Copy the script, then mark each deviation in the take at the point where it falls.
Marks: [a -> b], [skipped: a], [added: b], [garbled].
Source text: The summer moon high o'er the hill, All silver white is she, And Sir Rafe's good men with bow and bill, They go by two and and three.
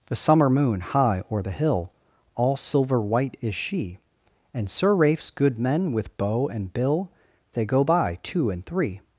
The summer moon high o'er the hill, All silver white is she, And Sir Rafe's good men with bow and bill, They go by two and [skipped: and] three.